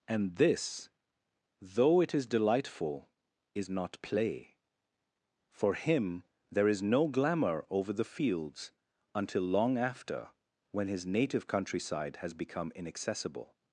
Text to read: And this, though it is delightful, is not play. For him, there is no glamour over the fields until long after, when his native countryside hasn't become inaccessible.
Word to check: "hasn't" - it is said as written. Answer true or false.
false